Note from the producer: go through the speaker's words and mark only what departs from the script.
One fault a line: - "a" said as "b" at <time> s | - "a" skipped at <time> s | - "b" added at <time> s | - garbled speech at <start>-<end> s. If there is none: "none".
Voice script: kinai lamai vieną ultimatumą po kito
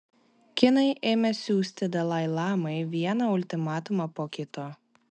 - "ėmė siųsti dalai" added at 1.1 s